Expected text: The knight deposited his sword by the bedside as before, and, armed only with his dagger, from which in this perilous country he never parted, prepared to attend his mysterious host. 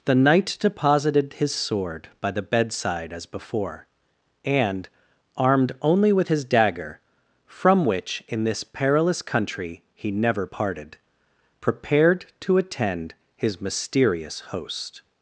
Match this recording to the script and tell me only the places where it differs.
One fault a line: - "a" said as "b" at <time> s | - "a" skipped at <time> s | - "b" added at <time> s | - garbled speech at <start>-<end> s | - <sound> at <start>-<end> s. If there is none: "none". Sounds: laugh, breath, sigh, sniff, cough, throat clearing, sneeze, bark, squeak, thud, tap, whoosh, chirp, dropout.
none